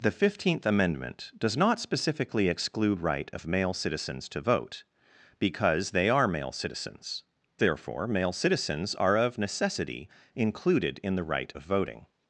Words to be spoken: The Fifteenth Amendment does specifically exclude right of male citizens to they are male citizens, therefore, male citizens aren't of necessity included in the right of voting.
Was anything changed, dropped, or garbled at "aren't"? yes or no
yes